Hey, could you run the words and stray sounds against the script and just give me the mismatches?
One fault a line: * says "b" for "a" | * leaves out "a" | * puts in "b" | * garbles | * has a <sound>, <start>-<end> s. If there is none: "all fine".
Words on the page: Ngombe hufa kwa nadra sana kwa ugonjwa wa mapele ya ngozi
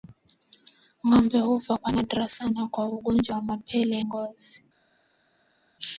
* leaves out "ya"